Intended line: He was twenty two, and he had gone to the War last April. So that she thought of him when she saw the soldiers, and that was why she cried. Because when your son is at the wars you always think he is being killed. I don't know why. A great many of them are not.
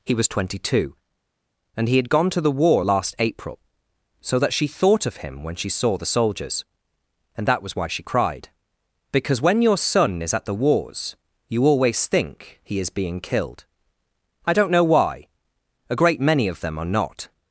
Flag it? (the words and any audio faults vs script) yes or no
no